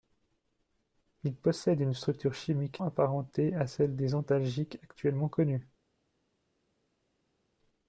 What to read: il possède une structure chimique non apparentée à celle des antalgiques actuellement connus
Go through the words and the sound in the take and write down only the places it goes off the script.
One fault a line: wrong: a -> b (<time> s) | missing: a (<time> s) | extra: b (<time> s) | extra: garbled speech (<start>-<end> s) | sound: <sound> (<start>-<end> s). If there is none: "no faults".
missing: non (2.8 s)